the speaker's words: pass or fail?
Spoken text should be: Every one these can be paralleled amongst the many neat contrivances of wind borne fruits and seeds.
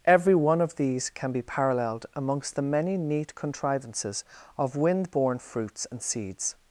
fail